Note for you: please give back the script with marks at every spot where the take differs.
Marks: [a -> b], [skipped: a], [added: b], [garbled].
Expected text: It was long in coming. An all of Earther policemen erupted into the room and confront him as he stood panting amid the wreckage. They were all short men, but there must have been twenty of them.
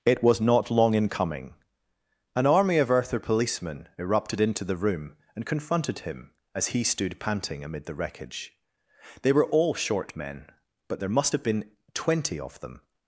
It was [added: not] long in coming. An [all -> army] of Earther policemen erupted into the room and [confront -> confronted] him as he stood panting amid the wreckage. They were all short men, but there must have been twenty of them.